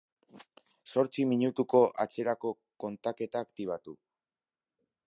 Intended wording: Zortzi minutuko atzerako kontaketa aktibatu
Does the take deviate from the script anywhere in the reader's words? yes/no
no